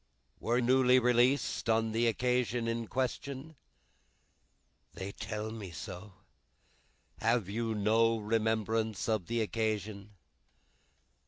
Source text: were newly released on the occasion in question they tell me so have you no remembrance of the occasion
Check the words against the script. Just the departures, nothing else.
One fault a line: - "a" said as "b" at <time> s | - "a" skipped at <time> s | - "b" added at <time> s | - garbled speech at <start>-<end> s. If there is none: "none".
none